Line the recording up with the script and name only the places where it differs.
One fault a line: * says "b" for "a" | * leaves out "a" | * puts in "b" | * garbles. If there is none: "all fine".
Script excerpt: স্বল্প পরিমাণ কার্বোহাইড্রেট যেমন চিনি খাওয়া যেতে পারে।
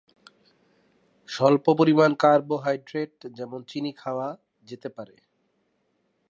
all fine